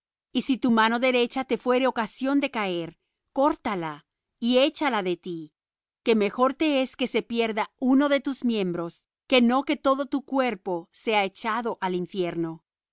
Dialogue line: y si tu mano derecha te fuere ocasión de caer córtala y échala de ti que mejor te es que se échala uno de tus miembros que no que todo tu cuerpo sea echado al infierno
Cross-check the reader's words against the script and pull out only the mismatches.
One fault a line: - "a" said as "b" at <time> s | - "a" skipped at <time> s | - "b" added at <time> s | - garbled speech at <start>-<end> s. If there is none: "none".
- "échala" said as "pierda" at 7.2 s